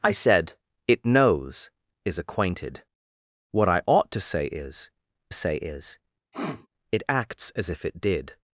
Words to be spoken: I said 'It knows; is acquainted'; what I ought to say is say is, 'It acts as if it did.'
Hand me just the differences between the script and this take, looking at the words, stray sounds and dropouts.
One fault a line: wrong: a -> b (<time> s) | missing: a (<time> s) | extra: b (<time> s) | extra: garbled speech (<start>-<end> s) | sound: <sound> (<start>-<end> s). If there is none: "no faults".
sound: sniff (6.3-6.7 s)